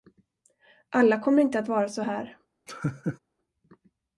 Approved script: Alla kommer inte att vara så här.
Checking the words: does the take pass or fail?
pass